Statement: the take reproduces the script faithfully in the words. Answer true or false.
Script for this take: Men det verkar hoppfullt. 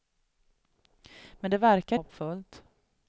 true